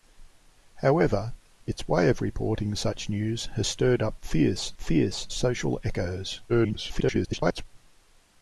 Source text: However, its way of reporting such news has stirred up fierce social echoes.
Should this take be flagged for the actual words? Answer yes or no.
yes